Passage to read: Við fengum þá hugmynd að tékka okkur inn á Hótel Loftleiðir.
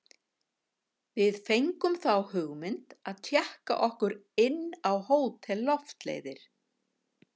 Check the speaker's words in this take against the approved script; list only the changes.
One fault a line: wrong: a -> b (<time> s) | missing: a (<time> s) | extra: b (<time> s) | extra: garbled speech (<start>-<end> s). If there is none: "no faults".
no faults